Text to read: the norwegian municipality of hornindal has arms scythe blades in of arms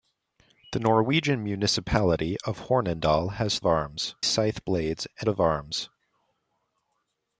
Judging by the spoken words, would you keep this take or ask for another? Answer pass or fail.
pass